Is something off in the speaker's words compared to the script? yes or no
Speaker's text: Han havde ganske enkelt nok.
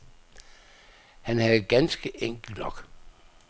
no